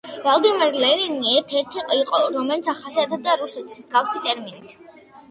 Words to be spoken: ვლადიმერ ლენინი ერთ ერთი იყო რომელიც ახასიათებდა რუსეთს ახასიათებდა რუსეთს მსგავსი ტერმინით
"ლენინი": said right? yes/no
yes